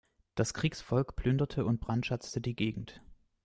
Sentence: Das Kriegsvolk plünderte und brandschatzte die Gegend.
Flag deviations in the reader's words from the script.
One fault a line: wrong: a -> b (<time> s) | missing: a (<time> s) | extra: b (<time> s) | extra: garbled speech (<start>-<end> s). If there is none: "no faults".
no faults